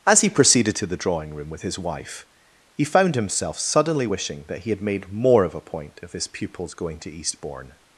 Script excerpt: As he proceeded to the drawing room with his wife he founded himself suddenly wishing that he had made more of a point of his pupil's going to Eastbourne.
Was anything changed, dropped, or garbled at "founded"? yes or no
yes